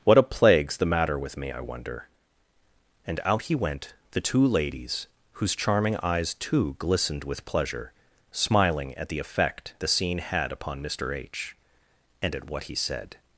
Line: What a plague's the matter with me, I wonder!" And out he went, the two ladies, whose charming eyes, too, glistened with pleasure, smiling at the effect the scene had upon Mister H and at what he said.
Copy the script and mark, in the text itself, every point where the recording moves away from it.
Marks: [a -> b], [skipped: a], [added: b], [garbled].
What a plague's the matter with me, I wonder!" And out he went, the two ladies, whose charming eyes, too, glistened with pleasure, smiling at the effect the scene had upon Mister H and at what he said.